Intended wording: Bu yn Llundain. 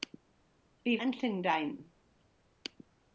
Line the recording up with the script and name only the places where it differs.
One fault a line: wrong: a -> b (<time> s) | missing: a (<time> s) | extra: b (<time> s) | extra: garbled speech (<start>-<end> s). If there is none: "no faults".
no faults